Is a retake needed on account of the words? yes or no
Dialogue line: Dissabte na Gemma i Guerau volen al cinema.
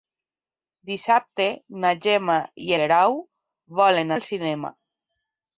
no